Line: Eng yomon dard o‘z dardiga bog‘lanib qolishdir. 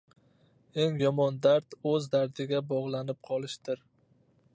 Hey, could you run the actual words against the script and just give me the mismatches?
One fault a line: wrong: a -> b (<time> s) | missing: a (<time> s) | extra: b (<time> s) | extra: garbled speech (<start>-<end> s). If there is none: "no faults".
no faults